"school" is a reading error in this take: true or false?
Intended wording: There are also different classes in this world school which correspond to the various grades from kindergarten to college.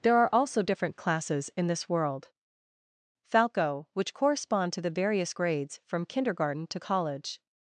true